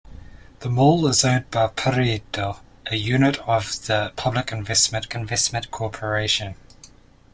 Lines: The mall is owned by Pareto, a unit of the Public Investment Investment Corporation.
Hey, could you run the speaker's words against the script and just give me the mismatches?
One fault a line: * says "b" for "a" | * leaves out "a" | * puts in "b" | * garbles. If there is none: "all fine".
all fine